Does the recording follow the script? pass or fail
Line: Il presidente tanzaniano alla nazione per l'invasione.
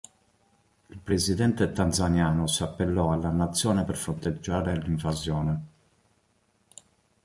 fail